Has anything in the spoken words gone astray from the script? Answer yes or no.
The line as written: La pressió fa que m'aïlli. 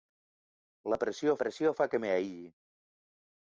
yes